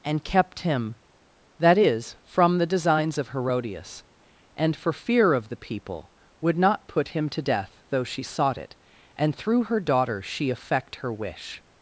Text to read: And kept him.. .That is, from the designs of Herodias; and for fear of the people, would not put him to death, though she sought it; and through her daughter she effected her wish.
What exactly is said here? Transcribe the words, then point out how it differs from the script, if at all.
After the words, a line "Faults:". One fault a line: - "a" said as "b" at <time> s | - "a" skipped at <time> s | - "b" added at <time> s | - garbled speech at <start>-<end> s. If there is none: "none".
And kept him.. .That is, from the designs of Herodias; and for fear of the people, would not put him to death, though she sought it; and through her daughter she effect her wish.
Faults:
- "effected" said as "effect" at 10.5 s